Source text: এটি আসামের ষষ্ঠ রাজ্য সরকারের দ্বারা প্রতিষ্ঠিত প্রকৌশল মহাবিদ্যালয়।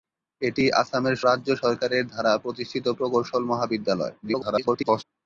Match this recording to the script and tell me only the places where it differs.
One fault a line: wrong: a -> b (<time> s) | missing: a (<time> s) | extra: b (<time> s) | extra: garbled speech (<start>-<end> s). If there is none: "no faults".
missing: ষষ্ঠ (1.1 s)
extra: garbled speech (4.2-5.0 s)